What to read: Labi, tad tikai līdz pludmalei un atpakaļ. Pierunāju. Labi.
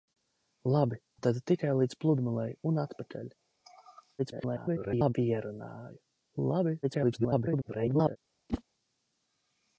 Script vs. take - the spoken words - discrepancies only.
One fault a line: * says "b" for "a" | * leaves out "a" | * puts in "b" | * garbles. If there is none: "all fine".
* garbles
* garbles